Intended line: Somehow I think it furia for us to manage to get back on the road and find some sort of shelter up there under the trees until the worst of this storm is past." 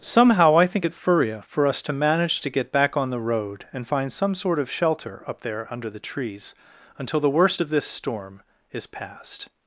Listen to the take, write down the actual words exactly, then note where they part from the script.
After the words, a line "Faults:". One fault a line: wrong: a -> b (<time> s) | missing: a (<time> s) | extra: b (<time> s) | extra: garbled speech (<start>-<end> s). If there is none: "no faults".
Somehow I think it furia for us to manage to get back on the road and find some sort of shelter up there under the trees until the worst of this storm is past."
Faults:
no faults